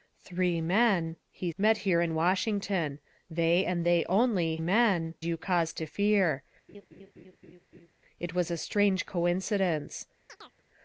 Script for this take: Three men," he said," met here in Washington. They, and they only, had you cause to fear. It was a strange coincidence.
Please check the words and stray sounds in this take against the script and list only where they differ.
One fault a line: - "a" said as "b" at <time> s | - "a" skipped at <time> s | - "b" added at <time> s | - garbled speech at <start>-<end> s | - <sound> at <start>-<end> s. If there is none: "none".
- "said" skipped at 1.5 s
- "had" said as "men" at 4.6 s
- laugh at 6.7-7.9 s
- chirp at 10.3-10.6 s